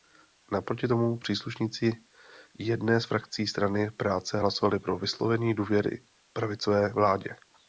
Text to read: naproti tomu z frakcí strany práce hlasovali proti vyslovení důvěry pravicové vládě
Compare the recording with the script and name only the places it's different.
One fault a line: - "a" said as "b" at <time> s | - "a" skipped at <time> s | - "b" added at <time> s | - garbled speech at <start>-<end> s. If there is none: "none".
- "příslušníci jedné" added at 1.2 s
- "proti" said as "pro" at 4.8 s